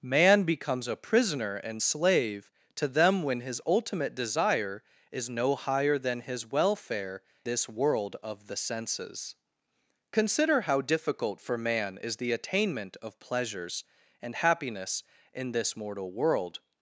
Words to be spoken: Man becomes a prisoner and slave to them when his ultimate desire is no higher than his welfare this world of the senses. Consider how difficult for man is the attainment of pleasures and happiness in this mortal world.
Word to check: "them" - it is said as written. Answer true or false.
true